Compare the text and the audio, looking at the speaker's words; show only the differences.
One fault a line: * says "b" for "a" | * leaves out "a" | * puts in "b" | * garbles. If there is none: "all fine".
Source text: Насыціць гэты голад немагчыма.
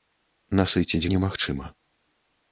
* leaves out "гэты голад"